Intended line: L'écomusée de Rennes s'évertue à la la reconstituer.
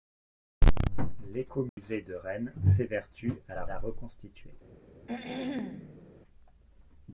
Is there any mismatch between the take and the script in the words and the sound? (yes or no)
yes